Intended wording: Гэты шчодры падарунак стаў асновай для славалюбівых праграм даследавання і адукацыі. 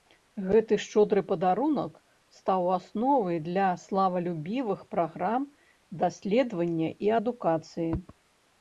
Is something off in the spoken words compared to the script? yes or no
no